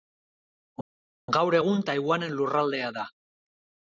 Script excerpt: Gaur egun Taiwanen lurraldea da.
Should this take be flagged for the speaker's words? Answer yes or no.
no